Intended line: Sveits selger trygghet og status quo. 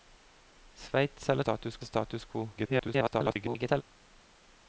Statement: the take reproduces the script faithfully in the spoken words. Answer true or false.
false